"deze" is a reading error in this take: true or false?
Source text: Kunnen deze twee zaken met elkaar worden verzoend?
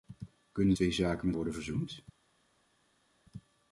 true